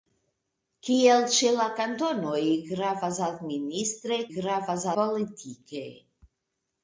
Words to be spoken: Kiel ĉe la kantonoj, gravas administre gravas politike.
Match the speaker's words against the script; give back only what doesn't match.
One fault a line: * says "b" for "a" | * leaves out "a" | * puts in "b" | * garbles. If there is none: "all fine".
all fine